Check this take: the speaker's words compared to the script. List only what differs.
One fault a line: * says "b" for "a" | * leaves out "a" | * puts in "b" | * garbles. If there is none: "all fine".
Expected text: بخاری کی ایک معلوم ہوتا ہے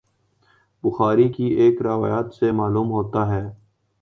* puts in "روایت سے"